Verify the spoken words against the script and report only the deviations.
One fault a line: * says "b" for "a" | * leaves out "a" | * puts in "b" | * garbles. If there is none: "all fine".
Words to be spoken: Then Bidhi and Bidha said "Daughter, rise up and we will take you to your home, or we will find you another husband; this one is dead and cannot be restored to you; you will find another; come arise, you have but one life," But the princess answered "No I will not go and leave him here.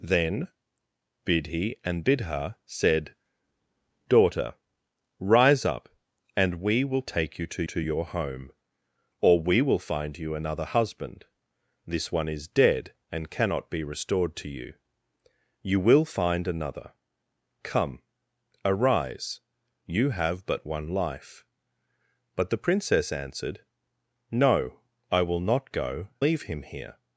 * puts in "to"
* leaves out "and"